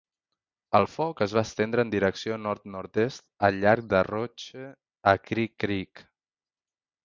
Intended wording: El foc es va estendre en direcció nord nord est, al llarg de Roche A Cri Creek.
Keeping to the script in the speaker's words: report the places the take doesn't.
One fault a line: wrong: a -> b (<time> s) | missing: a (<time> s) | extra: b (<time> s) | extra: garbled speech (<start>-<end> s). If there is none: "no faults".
no faults